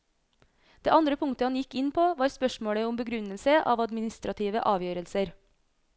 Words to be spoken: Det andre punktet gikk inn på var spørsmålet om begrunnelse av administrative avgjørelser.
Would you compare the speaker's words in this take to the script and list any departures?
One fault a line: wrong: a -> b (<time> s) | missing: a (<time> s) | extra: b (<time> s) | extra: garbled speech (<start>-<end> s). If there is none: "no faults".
extra: han (1.5 s)